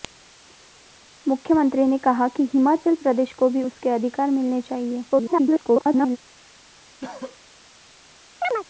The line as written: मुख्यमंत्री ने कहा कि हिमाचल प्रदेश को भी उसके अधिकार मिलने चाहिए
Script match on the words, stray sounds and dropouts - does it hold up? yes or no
no